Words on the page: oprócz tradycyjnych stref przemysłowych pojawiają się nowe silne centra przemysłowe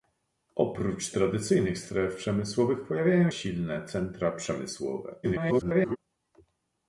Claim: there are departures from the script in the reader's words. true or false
true